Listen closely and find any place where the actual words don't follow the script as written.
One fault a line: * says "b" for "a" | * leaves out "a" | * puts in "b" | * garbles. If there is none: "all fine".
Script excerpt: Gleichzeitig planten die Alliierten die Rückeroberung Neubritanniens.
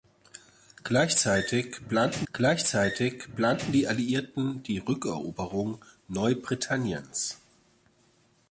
* puts in "gleichzeitig planten"